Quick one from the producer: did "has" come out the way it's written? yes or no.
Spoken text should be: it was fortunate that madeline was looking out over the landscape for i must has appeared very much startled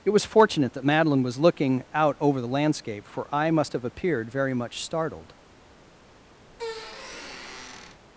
no